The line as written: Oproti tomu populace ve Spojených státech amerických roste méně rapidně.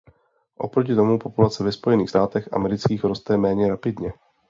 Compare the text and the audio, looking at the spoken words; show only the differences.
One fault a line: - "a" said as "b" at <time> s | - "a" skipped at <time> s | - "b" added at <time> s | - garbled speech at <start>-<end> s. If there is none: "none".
none